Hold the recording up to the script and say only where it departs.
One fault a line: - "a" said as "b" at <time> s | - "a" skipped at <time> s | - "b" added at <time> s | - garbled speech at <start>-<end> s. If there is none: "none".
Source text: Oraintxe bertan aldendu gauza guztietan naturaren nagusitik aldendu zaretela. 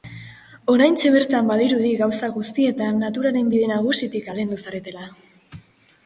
- "aldendu" said as "badirudi" at 1.5 s
- "bide" added at 3.5 s